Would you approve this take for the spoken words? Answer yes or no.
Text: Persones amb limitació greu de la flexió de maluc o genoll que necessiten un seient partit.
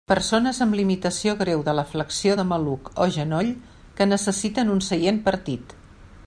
yes